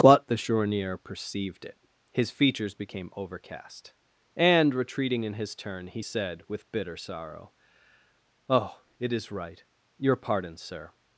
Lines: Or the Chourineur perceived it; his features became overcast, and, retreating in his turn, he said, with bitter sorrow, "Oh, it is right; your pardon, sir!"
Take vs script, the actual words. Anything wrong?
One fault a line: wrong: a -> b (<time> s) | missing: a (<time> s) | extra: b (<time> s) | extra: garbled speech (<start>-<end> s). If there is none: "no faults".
wrong: Or -> But (0.0 s)